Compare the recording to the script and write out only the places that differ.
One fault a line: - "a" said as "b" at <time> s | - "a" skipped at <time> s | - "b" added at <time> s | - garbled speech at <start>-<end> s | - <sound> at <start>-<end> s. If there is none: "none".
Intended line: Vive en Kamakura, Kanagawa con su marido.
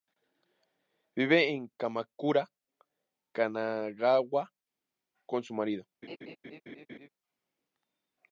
- laugh at 6.0-7.1 s